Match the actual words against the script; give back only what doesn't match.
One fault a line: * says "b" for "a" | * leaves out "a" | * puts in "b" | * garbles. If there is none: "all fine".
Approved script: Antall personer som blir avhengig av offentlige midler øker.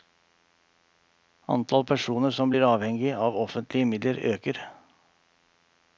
all fine